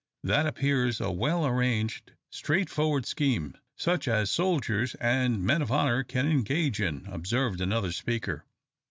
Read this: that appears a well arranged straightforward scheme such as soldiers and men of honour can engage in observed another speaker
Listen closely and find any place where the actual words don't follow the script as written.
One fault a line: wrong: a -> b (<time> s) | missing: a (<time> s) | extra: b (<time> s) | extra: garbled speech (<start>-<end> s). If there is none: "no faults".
no faults